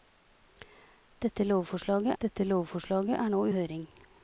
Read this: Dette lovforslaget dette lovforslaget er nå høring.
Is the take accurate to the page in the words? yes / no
yes